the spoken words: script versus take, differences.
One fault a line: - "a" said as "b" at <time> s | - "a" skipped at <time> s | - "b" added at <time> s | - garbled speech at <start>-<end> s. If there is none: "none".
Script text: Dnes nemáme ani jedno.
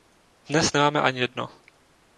none